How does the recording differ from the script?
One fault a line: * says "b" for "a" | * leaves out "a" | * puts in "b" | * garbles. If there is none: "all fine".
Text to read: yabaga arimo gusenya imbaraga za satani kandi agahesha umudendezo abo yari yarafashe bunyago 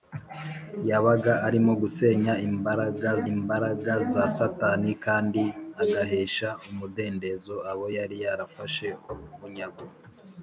* puts in "imbaraga"